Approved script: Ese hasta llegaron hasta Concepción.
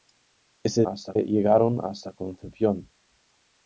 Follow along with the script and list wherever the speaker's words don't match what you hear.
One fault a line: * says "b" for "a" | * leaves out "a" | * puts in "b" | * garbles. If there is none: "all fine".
all fine